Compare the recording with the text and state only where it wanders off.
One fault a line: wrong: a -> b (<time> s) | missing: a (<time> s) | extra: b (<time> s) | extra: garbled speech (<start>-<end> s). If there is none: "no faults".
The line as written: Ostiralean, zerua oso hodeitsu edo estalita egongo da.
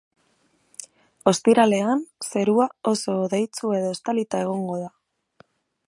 no faults